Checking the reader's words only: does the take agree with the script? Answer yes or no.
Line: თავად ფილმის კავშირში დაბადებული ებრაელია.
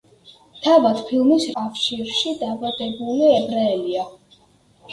yes